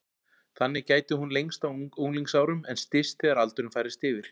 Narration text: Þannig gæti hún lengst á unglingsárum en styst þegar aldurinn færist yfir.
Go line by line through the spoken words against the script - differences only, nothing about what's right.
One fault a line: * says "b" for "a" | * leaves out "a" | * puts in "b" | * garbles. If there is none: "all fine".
all fine